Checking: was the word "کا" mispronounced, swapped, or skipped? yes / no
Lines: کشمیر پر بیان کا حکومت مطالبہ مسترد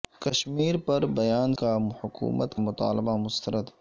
no